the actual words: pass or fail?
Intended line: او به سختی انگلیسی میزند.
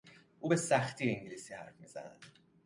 fail